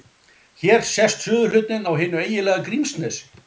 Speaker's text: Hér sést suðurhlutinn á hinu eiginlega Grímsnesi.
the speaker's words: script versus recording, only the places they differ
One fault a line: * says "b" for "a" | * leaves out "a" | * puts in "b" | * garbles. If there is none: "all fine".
all fine